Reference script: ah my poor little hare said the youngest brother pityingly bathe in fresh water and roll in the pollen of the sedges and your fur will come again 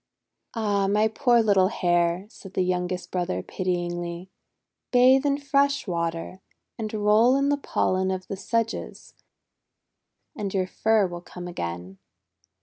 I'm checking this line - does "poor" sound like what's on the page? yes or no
yes